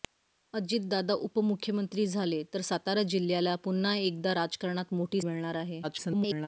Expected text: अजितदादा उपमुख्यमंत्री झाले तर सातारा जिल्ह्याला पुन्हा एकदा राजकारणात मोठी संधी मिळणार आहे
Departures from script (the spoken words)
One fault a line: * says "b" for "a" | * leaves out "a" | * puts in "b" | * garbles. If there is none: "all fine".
* leaves out "संधी"
* garbles